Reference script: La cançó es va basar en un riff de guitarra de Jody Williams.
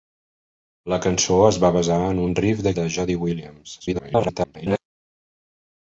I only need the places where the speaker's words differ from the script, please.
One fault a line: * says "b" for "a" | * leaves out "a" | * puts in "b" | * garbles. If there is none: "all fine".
* leaves out "guitarra"
* garbles